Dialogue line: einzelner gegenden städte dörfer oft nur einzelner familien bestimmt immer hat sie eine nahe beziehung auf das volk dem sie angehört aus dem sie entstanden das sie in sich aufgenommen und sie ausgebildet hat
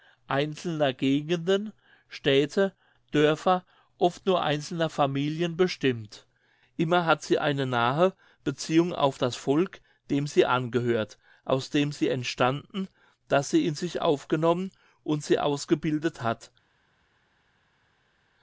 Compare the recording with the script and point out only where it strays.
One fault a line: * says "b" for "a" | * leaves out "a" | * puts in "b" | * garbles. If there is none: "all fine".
all fine